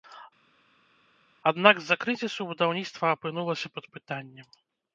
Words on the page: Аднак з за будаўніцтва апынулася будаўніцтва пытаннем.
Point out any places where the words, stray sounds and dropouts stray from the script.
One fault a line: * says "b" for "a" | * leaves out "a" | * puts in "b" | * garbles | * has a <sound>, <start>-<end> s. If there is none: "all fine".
* puts in "крызісу"
* says "пад" for "будаўніцтва"